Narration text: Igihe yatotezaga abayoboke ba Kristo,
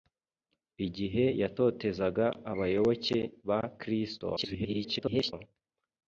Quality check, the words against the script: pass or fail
fail